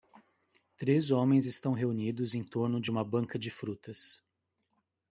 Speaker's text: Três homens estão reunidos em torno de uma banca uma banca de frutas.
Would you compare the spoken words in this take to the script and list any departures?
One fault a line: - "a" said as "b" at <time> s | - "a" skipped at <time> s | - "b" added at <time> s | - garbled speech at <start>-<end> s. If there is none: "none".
- "uma banca" skipped at 3.4 s